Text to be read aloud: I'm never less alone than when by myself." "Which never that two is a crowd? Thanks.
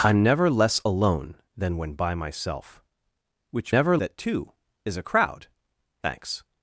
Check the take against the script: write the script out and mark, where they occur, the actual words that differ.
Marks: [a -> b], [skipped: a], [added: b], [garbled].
I'm never less alone than when by myself." "Which never that two is a crowd? Thanks.